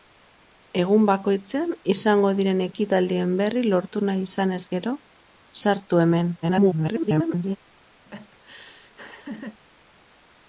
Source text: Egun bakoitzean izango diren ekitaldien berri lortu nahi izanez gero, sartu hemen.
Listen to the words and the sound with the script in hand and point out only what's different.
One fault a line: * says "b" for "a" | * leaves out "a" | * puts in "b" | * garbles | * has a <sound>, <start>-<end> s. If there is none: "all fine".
* garbles
* has a laugh, 8.1-9.6 s